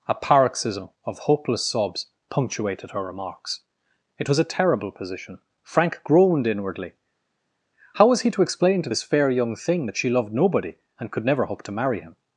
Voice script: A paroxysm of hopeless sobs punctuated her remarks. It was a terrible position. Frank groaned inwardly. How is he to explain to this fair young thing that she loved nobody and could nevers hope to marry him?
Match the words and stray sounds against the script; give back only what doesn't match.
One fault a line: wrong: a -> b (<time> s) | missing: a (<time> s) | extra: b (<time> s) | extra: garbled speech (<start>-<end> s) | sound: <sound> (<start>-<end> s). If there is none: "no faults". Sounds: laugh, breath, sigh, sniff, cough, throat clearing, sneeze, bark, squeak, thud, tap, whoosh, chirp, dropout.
wrong: is -> was (8.1 s)
wrong: nevers -> never (11.2 s)